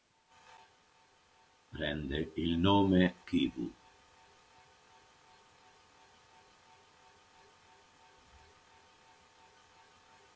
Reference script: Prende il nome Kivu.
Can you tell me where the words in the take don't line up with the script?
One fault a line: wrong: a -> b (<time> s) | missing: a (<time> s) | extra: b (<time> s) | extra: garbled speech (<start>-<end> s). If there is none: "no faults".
no faults